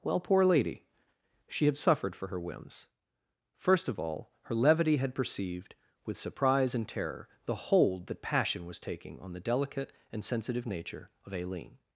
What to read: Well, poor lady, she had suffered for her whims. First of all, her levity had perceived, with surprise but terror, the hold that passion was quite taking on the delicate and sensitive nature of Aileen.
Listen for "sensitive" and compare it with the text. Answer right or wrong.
right